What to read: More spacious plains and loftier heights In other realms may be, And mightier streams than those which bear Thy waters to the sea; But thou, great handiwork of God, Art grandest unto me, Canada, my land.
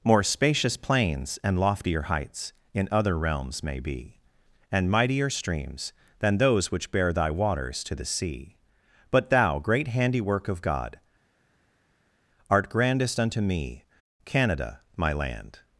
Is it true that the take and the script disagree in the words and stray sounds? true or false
false